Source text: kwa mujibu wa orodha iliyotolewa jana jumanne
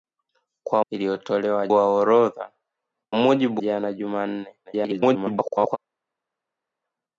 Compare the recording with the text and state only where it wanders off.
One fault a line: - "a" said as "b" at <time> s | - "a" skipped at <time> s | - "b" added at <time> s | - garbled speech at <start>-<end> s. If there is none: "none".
- "mujibu" said as "iliyotolewa" at 0.9 s
- "iliyotolewa" said as "mujibu" at 3.1 s
- garbled speech at 4.6-5.8 s